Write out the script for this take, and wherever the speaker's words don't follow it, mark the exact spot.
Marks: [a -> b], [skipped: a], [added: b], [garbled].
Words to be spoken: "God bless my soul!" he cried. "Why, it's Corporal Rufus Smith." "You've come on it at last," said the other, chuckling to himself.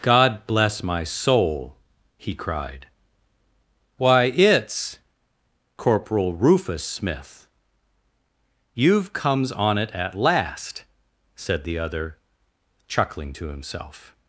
"God bless my soul!" he cried. "Why, it's Corporal Rufus Smith." "You've [come -> comes] on it at last," said the other, chuckling to himself.